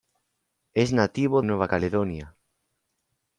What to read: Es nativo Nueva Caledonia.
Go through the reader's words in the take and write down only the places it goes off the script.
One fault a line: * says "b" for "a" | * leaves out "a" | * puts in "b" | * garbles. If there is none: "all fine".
all fine